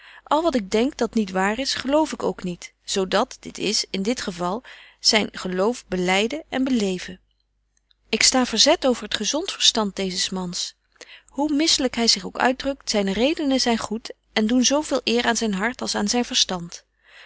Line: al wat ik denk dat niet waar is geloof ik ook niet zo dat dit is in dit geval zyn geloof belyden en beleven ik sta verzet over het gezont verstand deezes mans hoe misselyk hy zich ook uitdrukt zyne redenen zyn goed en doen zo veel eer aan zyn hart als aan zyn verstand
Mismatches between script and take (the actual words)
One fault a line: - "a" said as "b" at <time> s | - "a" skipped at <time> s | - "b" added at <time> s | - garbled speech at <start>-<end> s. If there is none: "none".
none